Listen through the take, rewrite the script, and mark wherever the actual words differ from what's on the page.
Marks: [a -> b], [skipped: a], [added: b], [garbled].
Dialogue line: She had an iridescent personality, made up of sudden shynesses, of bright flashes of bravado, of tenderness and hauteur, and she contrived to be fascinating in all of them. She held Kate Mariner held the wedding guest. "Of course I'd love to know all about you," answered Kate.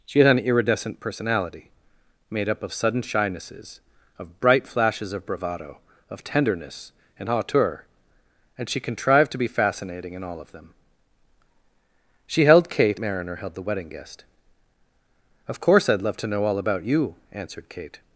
She had an iridescent personality, made up of sudden shynesses, of bright flashes of bravado, of tenderness and hauteur, and she contrived to be fascinating in all of them. She held Kate Mariner held the wedding guest. "Of course I'd love to know all about you," answered Kate.